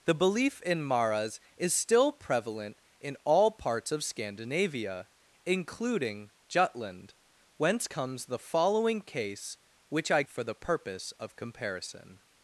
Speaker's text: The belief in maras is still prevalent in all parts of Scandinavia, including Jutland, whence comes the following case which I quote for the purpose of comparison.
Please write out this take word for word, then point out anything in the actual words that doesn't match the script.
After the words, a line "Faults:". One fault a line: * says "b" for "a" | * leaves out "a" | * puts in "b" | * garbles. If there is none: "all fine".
The belief in maras is still prevalent in all parts of Scandinavia, including Jutland, whence comes the following case which I for the purpose of comparison.
Faults:
* leaves out "quote"